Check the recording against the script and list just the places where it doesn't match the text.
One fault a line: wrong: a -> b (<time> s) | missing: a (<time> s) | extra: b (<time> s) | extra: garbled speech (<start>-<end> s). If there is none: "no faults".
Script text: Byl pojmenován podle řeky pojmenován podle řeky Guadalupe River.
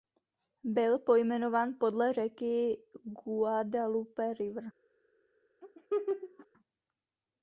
missing: pojmenován podle řeky (2.8 s)